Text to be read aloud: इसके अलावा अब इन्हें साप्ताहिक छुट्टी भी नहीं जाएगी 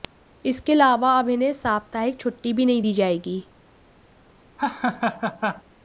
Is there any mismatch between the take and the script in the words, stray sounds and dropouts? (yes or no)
yes